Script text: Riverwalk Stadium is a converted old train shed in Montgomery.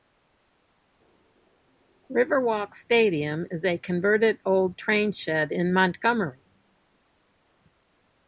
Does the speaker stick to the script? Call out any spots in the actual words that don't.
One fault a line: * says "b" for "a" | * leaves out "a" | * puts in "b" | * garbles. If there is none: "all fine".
all fine